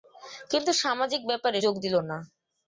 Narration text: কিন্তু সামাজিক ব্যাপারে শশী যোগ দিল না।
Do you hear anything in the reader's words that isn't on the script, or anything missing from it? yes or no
yes